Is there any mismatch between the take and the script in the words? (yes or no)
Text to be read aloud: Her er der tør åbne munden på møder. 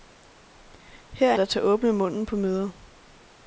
no